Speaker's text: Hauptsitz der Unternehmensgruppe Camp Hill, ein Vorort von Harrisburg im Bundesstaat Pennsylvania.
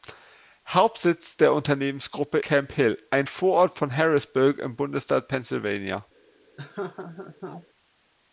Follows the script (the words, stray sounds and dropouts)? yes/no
no